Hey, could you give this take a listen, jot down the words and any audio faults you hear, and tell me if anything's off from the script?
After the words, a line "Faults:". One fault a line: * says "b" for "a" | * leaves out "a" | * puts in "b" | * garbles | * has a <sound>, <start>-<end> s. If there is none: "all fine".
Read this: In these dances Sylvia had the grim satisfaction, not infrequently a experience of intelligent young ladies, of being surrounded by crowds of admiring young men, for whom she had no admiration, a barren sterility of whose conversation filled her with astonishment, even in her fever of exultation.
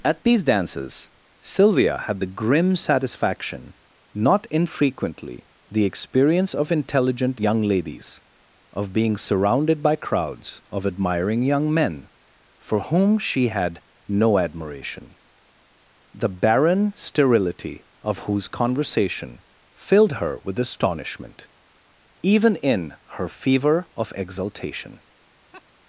At these dances Sylvia had the grim satisfaction, not infrequently the experience of intelligent young ladies, of being surrounded by crowds of admiring young men, for whom she had no admiration, the barren sterility of whose conversation filled her with astonishment, even in her fever of exultation.
Faults:
* says "At" for "In"
* says "the" for "a"
* says "the" for "a"
* has a laugh, 25.5-25.7 s